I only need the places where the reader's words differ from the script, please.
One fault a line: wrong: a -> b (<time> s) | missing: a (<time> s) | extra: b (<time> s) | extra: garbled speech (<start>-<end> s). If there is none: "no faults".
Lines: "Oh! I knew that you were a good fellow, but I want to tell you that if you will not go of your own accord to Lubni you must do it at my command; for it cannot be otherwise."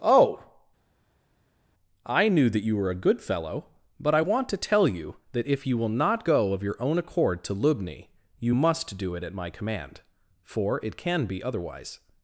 wrong: cannot -> can (11.0 s)